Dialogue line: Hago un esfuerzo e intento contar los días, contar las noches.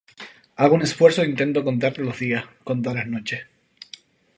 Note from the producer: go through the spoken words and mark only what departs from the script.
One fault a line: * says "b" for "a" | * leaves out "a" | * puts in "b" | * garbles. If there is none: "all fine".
all fine